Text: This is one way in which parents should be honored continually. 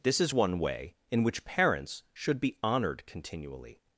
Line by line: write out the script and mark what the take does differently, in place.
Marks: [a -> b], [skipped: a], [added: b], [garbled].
This is one way in which parents should be honored continually.